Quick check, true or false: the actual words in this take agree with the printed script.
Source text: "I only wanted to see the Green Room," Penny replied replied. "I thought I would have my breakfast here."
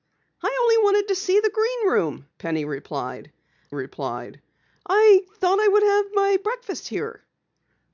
true